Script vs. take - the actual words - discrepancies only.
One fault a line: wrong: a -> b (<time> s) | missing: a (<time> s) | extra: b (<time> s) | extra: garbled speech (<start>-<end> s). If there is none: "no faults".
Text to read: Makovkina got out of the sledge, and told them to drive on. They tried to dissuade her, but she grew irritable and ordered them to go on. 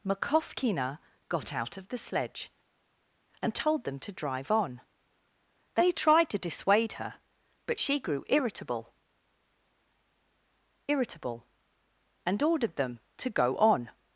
extra: irritable (10.9 s)